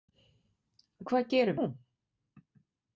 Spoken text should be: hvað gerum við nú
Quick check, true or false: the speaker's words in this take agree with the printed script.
false